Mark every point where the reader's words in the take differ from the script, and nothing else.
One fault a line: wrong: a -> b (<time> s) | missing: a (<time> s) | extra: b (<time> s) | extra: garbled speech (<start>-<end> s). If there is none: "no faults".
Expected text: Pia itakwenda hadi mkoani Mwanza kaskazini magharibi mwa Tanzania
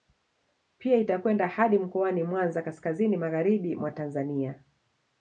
no faults